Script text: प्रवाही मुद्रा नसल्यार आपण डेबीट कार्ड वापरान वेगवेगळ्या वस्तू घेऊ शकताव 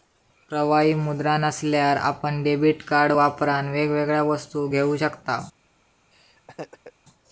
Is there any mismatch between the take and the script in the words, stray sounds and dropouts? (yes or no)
yes